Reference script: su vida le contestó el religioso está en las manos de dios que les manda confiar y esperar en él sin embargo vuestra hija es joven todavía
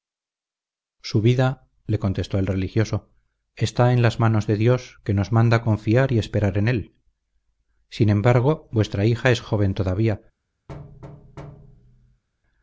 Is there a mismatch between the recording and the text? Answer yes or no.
yes